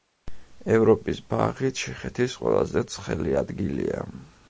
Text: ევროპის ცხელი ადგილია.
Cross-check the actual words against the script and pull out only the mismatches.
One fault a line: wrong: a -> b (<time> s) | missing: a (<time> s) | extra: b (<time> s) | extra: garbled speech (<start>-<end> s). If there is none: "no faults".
extra: ბაღი ჩეხეთის ყველაზე (1.3 s)